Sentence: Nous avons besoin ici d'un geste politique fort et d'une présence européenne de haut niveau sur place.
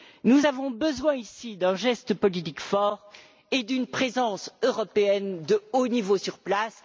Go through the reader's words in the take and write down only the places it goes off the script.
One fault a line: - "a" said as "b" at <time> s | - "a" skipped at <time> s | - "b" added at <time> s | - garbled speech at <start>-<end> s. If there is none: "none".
none